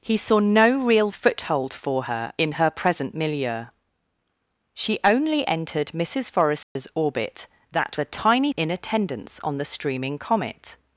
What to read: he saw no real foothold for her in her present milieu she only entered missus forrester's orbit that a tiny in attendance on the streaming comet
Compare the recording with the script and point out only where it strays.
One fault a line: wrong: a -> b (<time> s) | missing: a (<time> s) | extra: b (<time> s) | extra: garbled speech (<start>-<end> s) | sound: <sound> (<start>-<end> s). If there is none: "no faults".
sound: dropout (6.6-6.8 s)